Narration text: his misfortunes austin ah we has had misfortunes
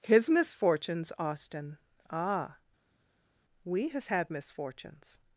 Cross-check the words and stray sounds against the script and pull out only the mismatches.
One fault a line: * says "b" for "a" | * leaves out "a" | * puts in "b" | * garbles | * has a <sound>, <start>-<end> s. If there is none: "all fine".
all fine